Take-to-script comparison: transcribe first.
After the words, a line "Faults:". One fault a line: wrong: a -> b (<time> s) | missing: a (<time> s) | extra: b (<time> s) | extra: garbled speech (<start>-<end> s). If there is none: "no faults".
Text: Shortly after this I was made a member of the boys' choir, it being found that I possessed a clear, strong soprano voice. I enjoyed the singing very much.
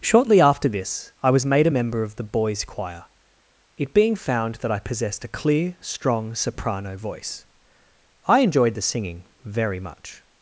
Shortly after this I was made a member of the boys' choir, it being found that I possessed a clear, strong soprano voice. I enjoyed the singing very much.
Faults:
no faults